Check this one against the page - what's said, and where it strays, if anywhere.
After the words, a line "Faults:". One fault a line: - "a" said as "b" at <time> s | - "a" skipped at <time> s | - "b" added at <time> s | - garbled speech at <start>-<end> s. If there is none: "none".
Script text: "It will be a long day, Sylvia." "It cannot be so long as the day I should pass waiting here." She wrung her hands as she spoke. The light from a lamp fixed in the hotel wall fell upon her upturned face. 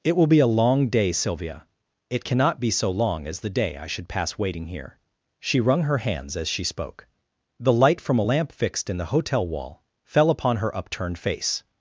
"It will be a long day, Sylvia." "It cannot be so long as the day I should pass waiting here." She wrung her hands as she spoke. The light from a lamp fixed in the hotel wall fell upon her upturned face.
Faults:
none